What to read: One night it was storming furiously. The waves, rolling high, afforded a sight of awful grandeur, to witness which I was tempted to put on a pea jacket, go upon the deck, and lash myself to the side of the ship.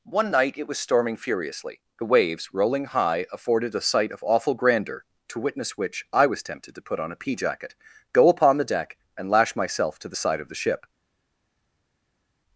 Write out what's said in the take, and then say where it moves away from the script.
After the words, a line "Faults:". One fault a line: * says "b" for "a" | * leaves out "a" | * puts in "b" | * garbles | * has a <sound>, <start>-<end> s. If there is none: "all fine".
One night it was storming furiously. The waves, rolling high, afforded a sight of awful grandeur, to witness which I was tempted to put on a pea jacket, go upon the deck, and lash myself to the side of the ship.
Faults:
all fine